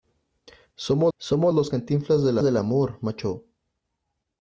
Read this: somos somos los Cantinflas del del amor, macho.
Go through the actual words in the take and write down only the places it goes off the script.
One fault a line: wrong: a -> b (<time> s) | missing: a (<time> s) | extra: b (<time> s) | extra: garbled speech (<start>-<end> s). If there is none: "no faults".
no faults